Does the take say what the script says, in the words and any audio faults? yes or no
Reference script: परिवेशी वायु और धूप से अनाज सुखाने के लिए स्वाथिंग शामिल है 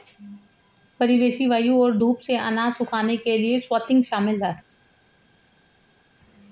yes